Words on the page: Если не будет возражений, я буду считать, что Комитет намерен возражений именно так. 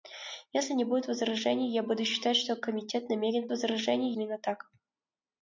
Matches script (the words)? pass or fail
pass